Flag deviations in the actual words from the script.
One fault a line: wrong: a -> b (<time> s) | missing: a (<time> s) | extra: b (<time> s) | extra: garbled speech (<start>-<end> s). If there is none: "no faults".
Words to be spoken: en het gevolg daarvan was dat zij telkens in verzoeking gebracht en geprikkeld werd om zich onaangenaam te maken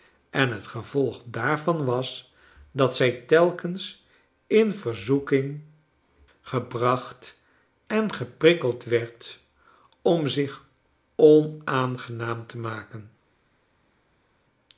no faults